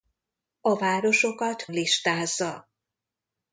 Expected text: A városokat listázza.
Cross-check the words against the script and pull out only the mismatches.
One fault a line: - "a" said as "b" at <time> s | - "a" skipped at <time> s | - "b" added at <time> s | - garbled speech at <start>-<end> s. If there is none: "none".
none